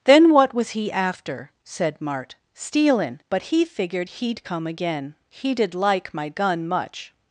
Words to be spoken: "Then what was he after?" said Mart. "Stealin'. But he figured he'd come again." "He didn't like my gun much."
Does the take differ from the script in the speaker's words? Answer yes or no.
yes